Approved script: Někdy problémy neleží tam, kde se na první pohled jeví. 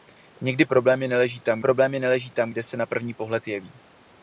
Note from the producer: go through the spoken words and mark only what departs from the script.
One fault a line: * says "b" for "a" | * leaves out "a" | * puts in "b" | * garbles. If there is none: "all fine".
* puts in "problémy neleží tam"